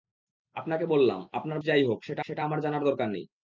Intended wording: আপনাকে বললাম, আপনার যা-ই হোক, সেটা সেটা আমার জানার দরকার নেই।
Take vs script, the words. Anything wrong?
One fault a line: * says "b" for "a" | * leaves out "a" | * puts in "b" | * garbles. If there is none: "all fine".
all fine